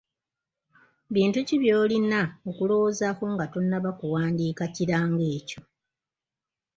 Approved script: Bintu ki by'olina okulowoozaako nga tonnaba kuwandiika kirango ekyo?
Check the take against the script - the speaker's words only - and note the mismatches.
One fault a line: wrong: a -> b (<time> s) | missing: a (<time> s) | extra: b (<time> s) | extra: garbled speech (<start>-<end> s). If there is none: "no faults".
no faults